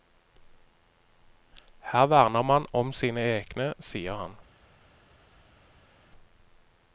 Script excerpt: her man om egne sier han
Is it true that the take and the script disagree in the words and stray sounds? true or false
true